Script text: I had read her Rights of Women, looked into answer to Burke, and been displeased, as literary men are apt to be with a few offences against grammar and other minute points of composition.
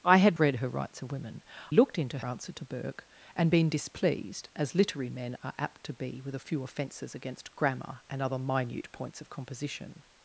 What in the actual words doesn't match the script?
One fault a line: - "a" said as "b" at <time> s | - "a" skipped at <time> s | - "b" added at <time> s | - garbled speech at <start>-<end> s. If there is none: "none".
none